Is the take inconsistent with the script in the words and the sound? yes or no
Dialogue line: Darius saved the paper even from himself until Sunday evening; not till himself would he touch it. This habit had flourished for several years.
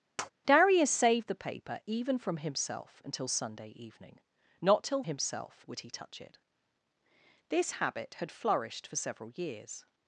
yes